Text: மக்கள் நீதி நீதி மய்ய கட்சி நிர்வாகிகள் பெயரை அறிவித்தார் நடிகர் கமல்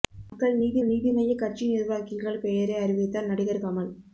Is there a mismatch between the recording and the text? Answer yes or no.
no